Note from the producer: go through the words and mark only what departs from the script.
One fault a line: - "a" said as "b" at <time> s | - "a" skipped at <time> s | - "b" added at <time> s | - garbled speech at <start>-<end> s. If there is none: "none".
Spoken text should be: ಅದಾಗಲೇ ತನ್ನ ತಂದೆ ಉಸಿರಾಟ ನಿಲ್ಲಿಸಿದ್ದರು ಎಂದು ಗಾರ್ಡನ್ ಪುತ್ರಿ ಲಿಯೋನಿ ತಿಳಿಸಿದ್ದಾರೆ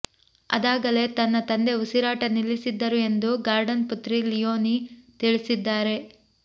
none